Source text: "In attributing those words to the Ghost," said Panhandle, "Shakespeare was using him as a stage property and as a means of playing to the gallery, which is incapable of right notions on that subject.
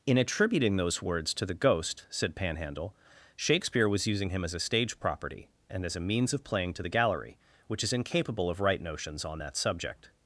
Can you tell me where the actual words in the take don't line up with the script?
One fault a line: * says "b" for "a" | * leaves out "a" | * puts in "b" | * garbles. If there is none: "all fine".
all fine